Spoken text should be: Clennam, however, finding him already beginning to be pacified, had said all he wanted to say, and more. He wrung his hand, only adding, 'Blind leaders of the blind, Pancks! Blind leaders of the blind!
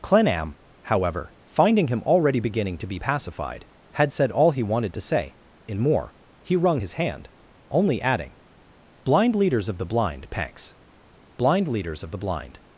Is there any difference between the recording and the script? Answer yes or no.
yes